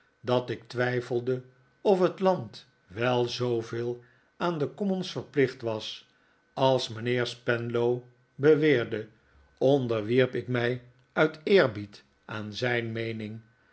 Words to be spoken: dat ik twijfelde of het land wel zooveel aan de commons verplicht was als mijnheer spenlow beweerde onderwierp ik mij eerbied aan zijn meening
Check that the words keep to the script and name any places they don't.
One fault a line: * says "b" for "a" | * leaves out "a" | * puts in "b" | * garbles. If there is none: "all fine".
* puts in "uit"